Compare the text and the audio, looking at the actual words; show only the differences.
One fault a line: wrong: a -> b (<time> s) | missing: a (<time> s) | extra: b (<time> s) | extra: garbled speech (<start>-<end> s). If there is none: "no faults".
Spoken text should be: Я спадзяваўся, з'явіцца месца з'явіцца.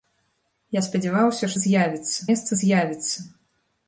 no faults